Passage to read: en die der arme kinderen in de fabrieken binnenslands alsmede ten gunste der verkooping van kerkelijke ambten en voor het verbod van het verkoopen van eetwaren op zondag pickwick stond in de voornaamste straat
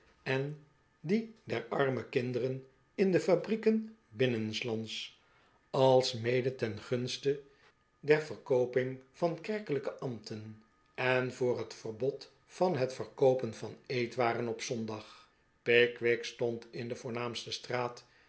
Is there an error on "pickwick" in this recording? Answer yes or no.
no